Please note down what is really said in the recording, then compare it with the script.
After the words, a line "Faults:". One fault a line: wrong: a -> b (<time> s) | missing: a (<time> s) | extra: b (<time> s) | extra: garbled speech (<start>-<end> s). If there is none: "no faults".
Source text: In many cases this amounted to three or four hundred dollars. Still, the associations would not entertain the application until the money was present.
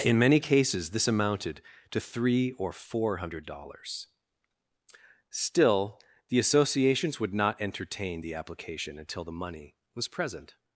In many cases this amounted to three or four hundred dollars. Still, the associations would not entertain the application until the money was present.
Faults:
no faults